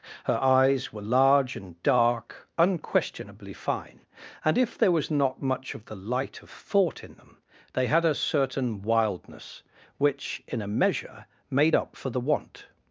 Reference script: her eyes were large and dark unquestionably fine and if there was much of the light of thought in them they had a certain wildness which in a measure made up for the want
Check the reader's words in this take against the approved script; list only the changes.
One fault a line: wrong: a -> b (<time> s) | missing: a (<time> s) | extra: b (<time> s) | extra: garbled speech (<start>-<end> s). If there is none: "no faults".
extra: not (5.1 s)